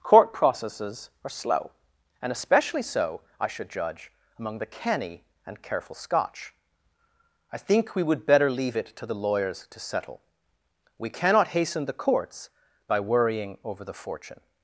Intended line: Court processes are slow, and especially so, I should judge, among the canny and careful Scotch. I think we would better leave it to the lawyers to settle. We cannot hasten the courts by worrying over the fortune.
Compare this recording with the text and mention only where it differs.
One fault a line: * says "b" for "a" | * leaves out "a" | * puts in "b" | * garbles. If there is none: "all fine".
all fine